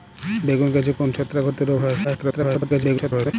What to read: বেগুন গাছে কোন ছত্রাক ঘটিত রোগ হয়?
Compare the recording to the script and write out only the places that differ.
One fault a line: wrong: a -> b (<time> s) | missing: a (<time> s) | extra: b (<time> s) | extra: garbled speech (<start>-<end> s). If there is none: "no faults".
extra: garbled speech (2.0-3.3 s)